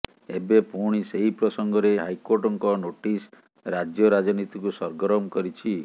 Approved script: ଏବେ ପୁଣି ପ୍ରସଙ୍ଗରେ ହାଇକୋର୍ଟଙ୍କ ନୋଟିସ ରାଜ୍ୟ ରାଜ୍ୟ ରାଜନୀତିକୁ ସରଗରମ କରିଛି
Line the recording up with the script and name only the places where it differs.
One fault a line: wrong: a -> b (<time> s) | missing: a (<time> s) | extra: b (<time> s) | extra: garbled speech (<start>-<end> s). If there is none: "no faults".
extra: ସେହି (1.1 s)
missing: ରାଜ୍ୟ (4.1 s)